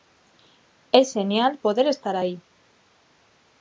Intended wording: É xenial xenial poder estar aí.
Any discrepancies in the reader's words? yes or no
yes